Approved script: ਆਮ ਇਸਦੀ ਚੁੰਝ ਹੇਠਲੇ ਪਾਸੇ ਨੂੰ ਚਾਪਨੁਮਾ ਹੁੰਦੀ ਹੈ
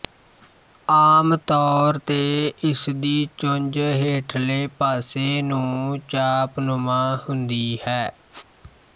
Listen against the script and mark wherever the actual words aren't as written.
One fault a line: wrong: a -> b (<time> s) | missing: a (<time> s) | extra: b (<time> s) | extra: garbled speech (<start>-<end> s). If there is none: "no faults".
extra: ਤੌਰ ਤੇ (1.4 s)